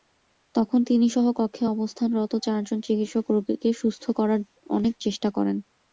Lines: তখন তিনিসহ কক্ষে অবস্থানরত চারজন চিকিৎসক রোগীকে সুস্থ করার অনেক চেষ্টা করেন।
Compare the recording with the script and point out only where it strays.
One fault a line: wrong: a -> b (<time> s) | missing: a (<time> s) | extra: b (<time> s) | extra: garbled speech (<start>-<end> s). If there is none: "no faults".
no faults